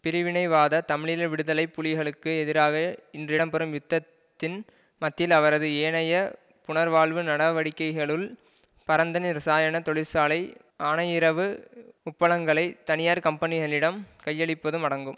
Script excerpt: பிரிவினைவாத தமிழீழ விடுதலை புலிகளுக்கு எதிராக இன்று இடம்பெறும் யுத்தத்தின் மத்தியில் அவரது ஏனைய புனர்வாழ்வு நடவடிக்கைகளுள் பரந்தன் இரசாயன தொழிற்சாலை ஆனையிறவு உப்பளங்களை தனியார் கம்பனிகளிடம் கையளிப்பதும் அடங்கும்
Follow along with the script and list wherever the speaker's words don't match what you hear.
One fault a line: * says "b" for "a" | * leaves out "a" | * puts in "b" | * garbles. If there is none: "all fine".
all fine